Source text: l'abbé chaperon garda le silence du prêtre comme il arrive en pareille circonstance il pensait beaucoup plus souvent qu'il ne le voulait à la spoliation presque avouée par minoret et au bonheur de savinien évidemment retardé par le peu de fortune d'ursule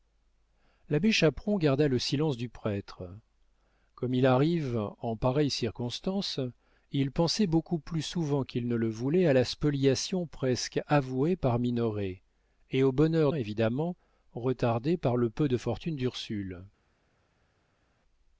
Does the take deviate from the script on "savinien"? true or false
true